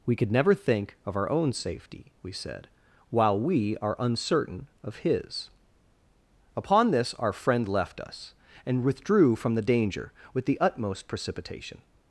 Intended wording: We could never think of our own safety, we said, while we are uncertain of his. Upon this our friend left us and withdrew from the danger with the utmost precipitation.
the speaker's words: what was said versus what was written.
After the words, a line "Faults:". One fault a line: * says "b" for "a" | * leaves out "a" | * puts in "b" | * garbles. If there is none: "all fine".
We could never think of our own safety, we said, while we are uncertain of his. Upon this our friend left us and withdrew from the danger with the utmost precipitation.
Faults:
all fine